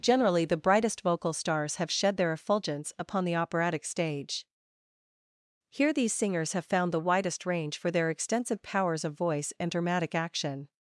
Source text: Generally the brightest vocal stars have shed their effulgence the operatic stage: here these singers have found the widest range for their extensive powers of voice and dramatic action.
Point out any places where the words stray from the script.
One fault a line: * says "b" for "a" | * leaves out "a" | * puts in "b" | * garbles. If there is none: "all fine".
* puts in "upon"